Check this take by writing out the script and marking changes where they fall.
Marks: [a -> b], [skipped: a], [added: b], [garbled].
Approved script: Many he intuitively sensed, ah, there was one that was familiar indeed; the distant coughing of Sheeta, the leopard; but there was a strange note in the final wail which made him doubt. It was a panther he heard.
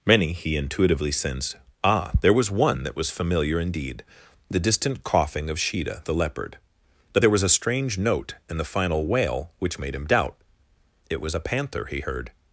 Many he intuitively sensed, ah, there was one that was familiar indeed; the distant coughing of Sheeta, the leopard; but there was a strange note in the final wail which made him doubt. It was a panther he heard.